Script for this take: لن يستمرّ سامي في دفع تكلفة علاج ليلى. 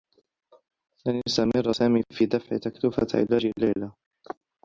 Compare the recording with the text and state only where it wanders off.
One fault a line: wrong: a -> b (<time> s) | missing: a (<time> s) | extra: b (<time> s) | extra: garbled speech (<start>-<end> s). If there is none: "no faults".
no faults